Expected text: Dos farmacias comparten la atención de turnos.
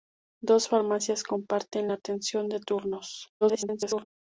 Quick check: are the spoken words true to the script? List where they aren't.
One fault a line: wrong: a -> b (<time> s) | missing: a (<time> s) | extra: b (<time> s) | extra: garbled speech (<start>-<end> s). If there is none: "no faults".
extra: garbled speech (3.4-4.0 s)